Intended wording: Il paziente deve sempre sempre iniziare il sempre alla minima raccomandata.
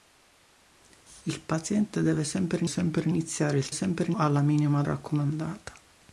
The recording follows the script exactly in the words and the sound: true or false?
true